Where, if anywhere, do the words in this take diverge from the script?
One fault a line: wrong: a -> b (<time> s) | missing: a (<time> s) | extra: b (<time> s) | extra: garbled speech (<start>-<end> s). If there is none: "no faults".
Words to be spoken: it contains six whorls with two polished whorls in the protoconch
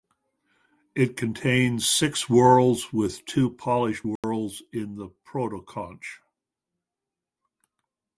no faults